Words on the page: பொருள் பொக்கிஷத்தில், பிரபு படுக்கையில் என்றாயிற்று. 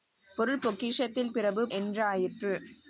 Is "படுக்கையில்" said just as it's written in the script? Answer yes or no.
no